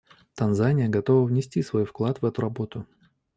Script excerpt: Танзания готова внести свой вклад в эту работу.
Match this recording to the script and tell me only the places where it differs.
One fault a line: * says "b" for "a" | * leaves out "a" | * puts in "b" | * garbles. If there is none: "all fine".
all fine